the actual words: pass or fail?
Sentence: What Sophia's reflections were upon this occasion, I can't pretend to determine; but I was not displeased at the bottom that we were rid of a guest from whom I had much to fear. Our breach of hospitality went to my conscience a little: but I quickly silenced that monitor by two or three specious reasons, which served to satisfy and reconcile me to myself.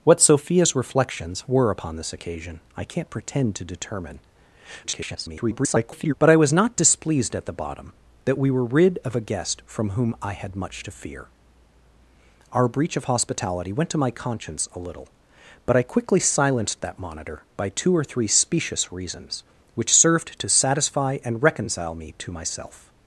fail